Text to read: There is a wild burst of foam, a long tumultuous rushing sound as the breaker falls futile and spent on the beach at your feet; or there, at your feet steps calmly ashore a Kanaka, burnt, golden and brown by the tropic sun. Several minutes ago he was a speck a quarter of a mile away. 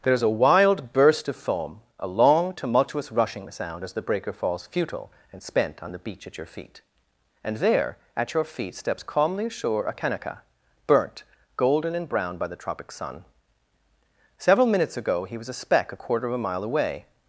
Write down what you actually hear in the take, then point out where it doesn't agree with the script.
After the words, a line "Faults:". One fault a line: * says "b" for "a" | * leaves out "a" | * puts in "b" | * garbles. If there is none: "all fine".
There is a wild burst of foam, a long tumultuous rushing sound as the breaker falls futile and spent on the beach at your feet; and there, at your feet steps calmly ashore a Kanaka, burnt, golden and brown by the tropic sun. Several minutes ago he was a speck a quarter of a mile away.
Faults:
* says "and" for "or"